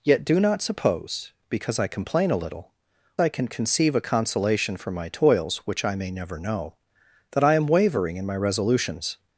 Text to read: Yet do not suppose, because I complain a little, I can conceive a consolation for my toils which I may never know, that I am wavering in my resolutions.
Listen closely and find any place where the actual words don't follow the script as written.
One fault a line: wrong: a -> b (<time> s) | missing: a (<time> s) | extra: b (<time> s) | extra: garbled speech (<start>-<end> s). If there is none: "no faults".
no faults